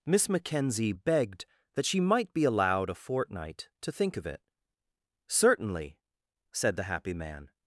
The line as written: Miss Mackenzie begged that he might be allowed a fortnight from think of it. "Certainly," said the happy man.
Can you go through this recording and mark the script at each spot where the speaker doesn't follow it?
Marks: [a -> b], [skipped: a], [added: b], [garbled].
Miss Mackenzie begged that [he -> she] might be allowed a fortnight [from -> to] think of it. "Certainly," said the happy man.